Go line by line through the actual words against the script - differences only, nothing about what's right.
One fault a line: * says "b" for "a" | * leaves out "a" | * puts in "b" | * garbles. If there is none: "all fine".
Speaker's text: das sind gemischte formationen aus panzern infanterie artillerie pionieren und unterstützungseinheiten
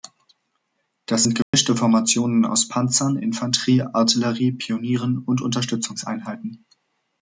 all fine